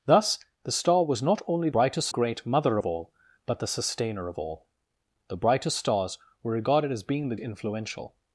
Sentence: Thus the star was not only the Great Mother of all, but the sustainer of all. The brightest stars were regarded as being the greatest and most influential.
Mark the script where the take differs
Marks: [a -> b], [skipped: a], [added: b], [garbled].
Thus the star was not only [the -> brightest] Great Mother of all, but the sustainer of all. The brightest stars were regarded as being the [skipped: greatest and most] influential.